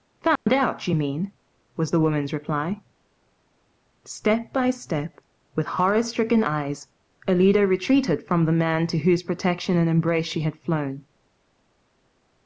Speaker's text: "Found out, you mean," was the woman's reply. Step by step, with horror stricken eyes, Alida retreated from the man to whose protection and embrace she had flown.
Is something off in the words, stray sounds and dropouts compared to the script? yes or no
yes